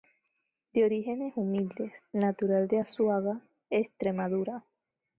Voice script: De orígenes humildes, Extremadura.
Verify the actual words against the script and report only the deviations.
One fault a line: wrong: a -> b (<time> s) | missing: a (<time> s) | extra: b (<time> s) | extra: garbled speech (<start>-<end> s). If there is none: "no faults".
extra: natural de Azuaga (2.1 s)